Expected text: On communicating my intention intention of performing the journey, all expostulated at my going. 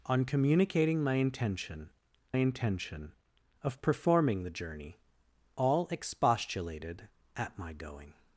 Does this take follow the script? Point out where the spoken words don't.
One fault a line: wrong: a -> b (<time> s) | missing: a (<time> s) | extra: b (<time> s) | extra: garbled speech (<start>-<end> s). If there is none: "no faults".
no faults